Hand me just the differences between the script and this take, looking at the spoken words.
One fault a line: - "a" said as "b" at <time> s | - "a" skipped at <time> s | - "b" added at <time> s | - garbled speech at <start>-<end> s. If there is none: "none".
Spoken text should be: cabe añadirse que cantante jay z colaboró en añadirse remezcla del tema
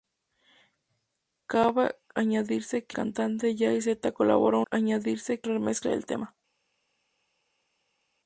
none